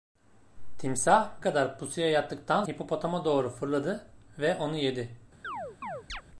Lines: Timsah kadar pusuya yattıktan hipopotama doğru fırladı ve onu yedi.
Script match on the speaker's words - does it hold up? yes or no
yes